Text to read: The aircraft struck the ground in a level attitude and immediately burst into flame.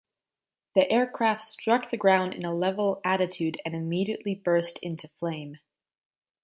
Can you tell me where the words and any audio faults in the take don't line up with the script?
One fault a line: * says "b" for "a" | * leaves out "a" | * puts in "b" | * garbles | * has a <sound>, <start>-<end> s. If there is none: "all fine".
all fine